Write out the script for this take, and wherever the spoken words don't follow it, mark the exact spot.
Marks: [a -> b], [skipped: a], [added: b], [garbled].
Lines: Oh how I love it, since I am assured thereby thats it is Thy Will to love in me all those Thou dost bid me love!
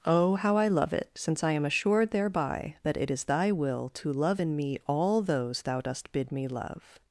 Oh how I love it, since I am assured thereby [thats -> that] it is Thy Will to love in me all those Thou dost bid me love!